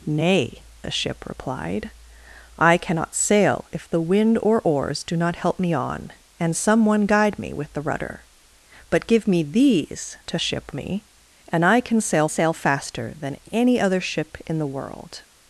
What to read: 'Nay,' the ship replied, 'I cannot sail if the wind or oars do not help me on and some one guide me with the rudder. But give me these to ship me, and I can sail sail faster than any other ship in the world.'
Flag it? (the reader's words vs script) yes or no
no